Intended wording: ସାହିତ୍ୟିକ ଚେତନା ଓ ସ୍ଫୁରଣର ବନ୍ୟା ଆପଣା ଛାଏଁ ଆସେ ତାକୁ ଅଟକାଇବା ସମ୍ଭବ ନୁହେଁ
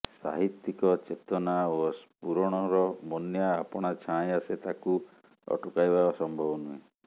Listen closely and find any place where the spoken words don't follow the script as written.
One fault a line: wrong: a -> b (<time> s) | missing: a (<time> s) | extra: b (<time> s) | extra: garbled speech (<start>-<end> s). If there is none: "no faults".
no faults